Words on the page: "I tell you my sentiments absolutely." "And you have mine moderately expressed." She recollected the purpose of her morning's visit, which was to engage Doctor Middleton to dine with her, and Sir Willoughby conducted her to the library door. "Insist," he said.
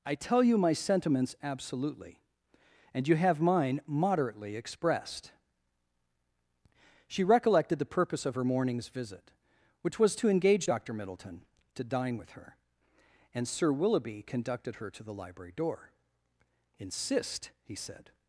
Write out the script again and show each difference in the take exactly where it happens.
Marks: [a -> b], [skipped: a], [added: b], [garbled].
"I tell you my sentiments absolutely." "And you have mine moderately expressed." She recollected the purpose of her morning's visit, which was to engage Doctor Middleton to dine with her, and Sir Willoughby conducted her to the library door. "Insist," he said.